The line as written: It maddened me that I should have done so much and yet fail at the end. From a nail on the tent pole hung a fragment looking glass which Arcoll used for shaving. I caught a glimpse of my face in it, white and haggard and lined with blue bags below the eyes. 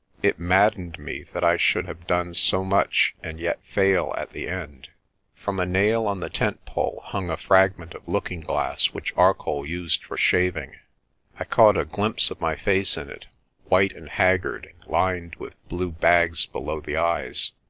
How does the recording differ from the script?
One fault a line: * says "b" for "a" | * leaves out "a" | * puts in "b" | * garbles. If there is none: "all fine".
* puts in "of"